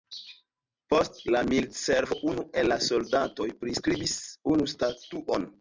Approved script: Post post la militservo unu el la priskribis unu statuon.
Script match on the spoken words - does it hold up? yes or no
no